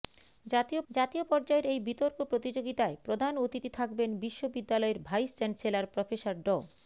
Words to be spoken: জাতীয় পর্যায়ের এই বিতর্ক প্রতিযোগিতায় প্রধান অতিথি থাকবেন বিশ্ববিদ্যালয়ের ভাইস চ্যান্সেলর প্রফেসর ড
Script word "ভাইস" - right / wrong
right